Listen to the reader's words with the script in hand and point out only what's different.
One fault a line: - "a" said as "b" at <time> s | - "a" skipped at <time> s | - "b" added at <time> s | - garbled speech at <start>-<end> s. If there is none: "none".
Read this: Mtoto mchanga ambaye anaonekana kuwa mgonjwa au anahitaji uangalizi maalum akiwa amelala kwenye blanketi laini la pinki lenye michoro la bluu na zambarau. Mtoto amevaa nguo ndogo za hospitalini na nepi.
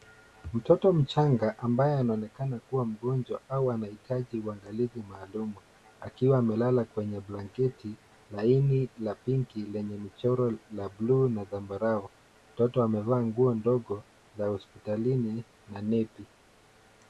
none